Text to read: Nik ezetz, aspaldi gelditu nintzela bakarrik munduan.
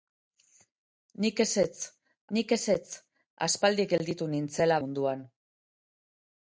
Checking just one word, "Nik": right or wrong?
right